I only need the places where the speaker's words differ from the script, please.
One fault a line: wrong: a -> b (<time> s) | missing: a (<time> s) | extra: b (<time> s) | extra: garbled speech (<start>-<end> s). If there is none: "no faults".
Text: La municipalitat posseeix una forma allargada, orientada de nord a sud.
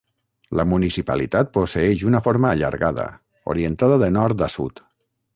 no faults